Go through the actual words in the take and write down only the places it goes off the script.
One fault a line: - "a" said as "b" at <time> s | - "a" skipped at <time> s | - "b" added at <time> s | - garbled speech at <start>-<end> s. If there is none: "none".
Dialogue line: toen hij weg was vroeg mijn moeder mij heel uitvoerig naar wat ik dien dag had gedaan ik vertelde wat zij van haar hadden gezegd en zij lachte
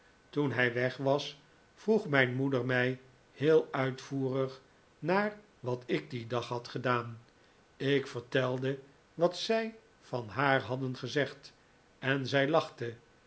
none